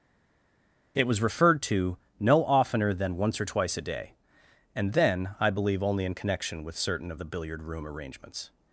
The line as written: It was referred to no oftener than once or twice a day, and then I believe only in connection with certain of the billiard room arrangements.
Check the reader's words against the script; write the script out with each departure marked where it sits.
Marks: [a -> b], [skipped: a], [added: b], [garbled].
It was referred to no oftener than once or twice a day, and then I believe only in connection with certain of the billiard room arrangements.